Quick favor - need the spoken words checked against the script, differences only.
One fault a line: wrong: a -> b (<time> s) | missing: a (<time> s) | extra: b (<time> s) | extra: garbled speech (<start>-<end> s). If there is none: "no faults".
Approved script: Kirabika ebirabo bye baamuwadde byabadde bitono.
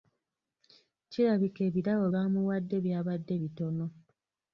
missing: bye (2.0 s)